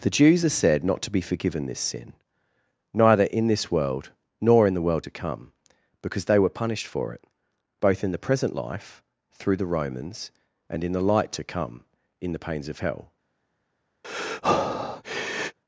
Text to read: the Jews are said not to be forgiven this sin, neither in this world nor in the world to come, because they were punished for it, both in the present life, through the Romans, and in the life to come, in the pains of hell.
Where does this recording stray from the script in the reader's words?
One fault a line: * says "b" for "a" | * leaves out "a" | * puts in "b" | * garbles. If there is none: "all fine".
* says "light" for "life"